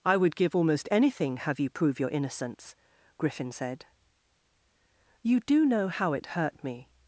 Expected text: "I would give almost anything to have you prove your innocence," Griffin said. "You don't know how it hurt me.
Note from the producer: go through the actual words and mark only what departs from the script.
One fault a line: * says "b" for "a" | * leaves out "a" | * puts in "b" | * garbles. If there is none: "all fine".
* leaves out "to"
* says "do" for "don't"